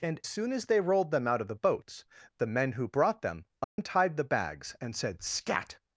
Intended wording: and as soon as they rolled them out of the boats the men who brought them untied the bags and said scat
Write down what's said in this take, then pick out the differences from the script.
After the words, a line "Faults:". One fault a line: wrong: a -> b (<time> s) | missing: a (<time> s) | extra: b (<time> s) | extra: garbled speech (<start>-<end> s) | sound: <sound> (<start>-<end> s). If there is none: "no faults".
and soon as they rolled them out of the boats the men who brought them untied the bags and said scat
Faults:
missing: as (0.2 s)
sound: dropout (3.6-3.8 s)